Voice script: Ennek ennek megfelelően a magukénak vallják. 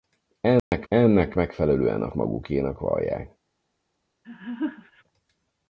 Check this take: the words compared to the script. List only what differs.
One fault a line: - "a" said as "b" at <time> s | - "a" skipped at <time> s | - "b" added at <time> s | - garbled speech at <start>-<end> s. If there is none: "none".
none